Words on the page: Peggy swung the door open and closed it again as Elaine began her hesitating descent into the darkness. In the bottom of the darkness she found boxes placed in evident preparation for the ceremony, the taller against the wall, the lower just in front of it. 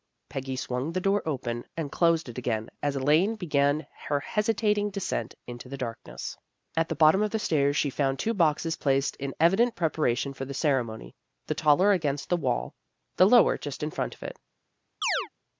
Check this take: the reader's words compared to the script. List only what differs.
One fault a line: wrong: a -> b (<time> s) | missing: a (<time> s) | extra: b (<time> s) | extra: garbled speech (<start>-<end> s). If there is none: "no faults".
wrong: In -> At (6.8 s)
wrong: darkness -> stairs (7.4 s)
extra: two (8.2 s)